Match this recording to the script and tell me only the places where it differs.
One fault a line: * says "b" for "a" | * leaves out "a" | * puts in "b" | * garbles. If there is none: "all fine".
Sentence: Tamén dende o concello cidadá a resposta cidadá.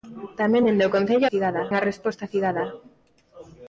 all fine